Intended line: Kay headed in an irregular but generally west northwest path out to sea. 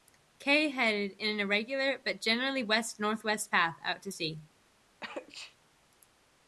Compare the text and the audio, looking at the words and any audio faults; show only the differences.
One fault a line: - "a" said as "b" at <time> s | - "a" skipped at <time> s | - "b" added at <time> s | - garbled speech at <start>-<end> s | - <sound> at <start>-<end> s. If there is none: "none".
- sneeze at 5.0-5.6 s